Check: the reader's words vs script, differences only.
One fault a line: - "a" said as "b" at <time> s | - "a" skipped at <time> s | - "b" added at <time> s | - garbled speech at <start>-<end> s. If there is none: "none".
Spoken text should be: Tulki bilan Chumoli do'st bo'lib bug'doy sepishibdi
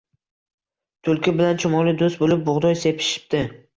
none